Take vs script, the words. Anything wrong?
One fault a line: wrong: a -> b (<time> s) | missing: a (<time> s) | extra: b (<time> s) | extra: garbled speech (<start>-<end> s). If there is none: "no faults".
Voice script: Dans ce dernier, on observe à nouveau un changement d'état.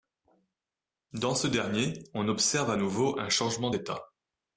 no faults